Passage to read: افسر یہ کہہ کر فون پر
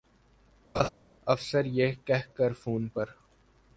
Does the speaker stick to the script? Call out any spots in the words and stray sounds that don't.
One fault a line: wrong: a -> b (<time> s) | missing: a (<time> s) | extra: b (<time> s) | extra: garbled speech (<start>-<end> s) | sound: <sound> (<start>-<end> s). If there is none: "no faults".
sound: laugh (0.7-0.9 s)